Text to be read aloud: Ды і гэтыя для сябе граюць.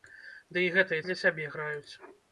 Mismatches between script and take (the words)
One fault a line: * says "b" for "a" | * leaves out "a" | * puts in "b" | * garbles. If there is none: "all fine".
all fine